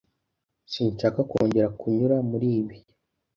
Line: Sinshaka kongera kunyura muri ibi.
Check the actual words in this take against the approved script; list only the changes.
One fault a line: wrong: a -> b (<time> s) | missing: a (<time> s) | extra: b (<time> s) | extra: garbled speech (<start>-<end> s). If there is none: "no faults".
no faults